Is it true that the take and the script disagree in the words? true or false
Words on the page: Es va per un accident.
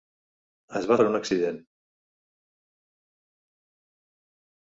false